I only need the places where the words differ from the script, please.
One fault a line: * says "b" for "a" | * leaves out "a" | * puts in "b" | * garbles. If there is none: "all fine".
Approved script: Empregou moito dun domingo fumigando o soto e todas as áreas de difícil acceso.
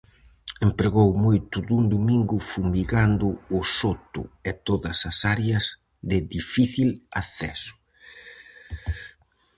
all fine